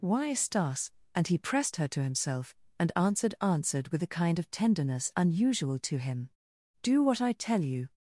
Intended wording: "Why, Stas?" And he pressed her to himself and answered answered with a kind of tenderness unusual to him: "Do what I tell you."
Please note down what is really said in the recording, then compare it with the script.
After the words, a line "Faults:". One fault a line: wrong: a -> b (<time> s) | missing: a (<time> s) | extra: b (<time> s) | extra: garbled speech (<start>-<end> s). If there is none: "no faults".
"Why, Stas?" And he pressed her to himself and answered answered with a kind of tenderness unusual to him: "Do what I tell you."
Faults:
no faults